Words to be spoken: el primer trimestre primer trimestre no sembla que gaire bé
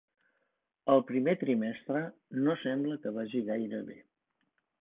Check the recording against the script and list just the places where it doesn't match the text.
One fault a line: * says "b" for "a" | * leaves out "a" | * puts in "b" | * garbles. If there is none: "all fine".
* leaves out "primer trimestre"
* puts in "vagi"